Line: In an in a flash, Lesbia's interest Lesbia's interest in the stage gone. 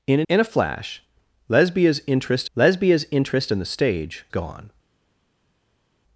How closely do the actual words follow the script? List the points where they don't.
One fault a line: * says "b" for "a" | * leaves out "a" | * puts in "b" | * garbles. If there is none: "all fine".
all fine